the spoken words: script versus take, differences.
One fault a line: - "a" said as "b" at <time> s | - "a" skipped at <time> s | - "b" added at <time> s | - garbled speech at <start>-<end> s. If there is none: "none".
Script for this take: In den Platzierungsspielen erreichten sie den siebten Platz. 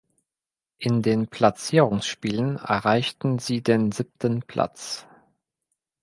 none